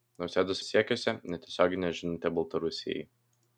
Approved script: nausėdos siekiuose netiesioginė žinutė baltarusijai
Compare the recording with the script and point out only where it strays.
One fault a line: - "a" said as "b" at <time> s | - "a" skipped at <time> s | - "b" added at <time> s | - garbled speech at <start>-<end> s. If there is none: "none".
none